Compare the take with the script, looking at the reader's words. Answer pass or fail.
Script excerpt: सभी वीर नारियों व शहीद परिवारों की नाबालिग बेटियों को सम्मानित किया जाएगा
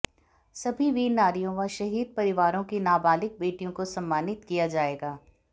pass